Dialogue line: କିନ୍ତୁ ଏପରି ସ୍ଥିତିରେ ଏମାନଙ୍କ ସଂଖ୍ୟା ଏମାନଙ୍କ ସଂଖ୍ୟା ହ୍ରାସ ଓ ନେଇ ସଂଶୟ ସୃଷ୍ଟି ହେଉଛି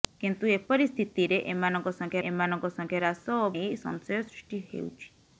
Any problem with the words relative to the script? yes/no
no